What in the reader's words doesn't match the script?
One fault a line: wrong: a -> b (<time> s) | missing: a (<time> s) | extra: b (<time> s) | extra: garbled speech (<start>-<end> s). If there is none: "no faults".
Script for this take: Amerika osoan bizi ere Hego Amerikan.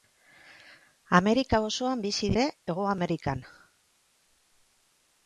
no faults